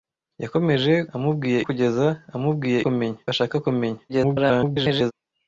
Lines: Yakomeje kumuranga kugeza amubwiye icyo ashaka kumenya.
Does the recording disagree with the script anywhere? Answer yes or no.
yes